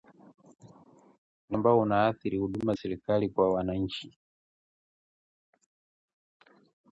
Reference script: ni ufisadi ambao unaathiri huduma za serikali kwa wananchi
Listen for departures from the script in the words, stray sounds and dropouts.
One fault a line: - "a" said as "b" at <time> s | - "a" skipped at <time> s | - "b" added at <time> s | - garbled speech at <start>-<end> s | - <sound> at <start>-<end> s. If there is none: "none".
- "ufisadi" skipped at 1.6 s
- "za" skipped at 2.7 s